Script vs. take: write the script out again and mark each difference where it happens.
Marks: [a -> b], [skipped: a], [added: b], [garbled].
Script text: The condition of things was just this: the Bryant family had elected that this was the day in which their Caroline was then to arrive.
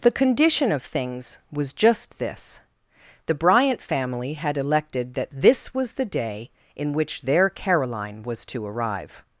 The condition of things was just this: the Bryant family had elected that this was the day in which their Caroline was [skipped: then] to arrive.